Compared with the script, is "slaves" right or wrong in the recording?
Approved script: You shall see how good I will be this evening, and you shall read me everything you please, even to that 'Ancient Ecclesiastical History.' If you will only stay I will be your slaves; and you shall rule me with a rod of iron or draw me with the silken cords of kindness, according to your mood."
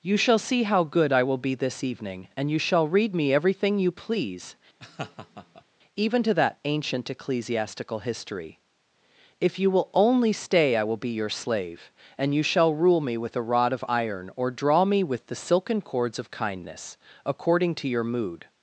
wrong